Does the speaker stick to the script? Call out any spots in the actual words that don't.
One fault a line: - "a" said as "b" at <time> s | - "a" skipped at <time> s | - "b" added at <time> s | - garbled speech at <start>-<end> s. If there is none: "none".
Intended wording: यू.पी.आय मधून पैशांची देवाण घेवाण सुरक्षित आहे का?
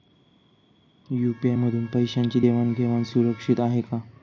none